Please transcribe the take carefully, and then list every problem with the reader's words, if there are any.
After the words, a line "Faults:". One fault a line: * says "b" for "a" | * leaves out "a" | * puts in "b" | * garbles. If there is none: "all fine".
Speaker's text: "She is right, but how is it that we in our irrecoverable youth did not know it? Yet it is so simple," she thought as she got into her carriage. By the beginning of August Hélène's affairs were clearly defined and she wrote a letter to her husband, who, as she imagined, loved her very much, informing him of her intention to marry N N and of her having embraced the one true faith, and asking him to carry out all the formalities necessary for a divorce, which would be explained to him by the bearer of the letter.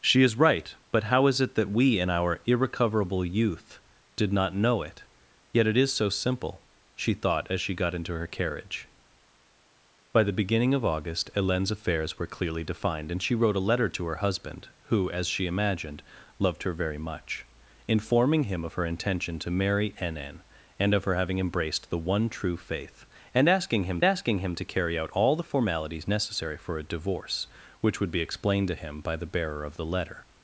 "She is right, but how is it that we in our irrecoverable youth did not know it? Yet it is so simple," she thought as she got into her carriage. By the beginning of August Hélène's affairs were clearly defined and she wrote a letter to her husband, who, as she imagined, loved her very much, informing him of her intention to marry N N and of her having embraced the one true faith, and asking him asking him to carry out all the formalities necessary for a divorce, which would be explained to him by the bearer of the letter.
Faults:
* puts in "asking him"